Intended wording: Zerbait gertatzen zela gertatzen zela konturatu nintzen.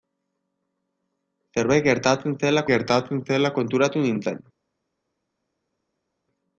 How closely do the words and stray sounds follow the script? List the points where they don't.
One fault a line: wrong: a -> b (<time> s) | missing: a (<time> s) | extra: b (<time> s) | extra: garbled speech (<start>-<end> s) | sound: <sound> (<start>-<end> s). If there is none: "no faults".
no faults